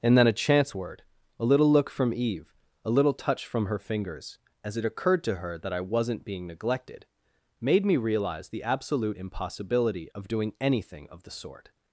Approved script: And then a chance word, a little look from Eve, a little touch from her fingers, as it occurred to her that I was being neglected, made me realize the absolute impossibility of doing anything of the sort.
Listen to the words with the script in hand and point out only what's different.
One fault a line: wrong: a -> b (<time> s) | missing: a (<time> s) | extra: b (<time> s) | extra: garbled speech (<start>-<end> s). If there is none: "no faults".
wrong: was -> wasn't (5.8 s)